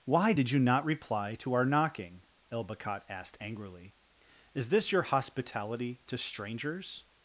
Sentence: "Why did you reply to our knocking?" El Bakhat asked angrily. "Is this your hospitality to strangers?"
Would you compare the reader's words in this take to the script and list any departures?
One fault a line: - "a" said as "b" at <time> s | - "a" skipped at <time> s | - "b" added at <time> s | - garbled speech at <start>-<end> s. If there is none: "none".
- "not" added at 0.6 s